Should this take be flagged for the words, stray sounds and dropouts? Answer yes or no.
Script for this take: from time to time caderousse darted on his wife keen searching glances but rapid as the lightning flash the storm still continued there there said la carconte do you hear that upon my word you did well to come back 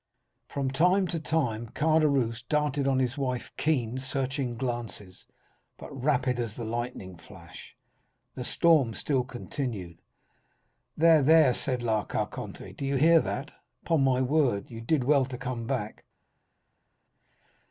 no